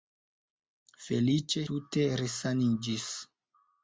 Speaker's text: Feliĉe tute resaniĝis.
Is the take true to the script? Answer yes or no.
yes